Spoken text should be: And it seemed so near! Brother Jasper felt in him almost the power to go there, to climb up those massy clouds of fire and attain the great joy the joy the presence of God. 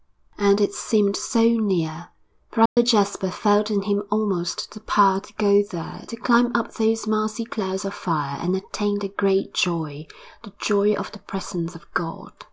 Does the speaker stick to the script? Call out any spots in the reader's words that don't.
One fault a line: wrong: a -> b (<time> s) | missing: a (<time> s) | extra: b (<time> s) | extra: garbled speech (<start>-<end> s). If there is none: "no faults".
extra: of (10.9 s)